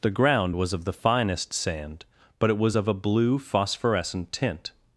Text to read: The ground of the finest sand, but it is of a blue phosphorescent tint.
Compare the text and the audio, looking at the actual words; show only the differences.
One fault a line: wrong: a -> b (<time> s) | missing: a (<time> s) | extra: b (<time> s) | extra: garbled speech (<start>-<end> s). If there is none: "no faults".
extra: was (0.5 s)
wrong: is -> was (2.6 s)